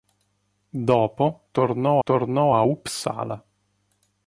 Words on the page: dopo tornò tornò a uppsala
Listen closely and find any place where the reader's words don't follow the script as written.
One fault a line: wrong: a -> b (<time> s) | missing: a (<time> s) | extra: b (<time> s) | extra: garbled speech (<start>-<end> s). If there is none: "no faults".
no faults